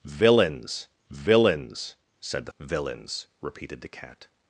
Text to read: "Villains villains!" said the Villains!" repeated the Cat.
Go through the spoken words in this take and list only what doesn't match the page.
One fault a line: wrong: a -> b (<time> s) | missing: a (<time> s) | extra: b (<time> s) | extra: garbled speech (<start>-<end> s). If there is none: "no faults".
no faults